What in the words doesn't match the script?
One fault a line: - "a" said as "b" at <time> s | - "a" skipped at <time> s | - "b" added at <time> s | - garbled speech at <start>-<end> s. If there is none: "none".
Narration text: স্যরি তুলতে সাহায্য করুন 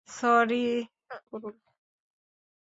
- "তুলতে সাহায্য" skipped at 0.7 s